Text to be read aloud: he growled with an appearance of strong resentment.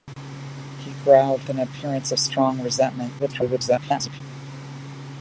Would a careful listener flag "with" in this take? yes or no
yes